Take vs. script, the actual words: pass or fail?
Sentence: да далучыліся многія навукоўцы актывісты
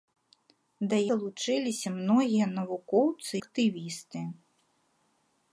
pass